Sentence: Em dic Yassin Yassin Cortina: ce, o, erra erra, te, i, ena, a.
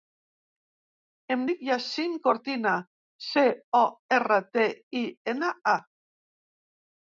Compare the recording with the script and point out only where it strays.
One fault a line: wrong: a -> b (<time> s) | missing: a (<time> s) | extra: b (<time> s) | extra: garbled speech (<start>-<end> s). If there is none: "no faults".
missing: Yassin (2.1 s)
missing: erra (4.4 s)